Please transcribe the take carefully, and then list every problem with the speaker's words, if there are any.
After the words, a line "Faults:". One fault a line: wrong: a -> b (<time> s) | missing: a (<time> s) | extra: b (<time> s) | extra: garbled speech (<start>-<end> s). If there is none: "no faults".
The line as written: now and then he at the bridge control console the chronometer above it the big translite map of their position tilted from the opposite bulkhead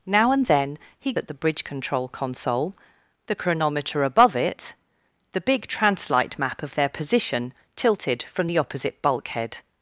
now and then he at the bridge control console the chronometer above it the big translite map of their position tilted from the opposite bulkhead
Faults:
no faults